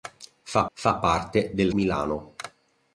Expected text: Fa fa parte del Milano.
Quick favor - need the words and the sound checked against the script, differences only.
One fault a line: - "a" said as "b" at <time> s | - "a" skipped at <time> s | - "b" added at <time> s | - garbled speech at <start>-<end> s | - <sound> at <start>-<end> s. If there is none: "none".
none